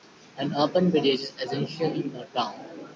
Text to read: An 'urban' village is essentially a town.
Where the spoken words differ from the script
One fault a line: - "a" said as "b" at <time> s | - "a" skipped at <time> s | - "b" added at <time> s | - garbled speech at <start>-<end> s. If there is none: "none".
none